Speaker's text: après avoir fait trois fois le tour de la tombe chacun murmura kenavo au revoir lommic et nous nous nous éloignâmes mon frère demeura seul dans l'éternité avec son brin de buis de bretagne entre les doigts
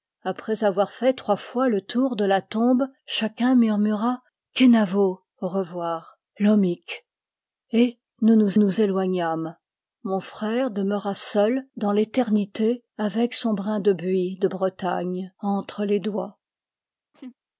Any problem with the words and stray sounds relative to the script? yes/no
yes